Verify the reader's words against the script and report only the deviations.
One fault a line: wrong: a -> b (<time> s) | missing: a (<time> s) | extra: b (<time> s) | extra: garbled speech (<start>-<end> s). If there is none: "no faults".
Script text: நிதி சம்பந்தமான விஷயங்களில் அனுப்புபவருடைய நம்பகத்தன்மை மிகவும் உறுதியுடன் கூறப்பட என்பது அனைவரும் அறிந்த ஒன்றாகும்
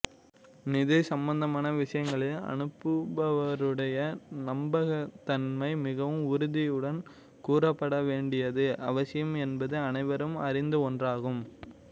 extra: வேண்டியது அவசியம் (8.1 s)